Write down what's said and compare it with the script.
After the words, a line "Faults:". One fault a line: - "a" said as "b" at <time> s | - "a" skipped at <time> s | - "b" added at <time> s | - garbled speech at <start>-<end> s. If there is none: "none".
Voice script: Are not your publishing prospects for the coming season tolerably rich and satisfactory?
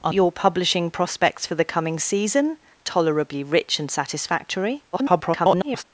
Are your publishing prospects for the coming season tolerably rich and satisfactory? [garbled]
Faults:
- "not" skipped at 0.1 s
- garbled speech at 4.9-5.8 s